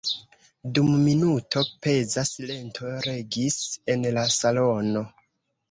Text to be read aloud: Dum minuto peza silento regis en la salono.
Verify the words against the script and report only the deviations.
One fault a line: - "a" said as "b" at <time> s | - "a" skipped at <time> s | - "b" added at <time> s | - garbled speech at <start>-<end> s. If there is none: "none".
none